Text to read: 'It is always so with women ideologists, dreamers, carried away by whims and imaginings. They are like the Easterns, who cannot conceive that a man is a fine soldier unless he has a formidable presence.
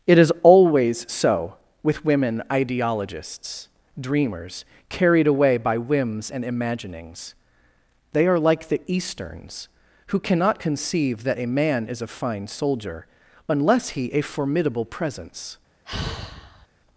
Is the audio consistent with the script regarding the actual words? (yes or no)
no